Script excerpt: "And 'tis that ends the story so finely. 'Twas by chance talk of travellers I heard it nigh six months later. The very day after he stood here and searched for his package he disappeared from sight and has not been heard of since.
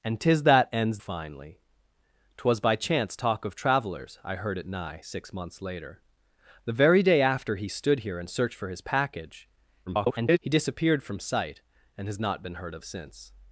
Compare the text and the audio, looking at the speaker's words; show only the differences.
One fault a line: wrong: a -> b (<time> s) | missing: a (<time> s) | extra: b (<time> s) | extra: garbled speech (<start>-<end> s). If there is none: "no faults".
missing: the story so (1.0 s)
extra: garbled speech (9.9-10.4 s)